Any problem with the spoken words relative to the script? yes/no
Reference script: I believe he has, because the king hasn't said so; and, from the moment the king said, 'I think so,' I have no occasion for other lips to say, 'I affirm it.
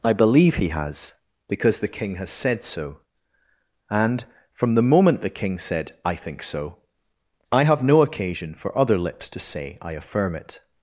yes